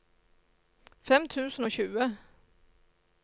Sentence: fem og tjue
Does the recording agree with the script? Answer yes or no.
no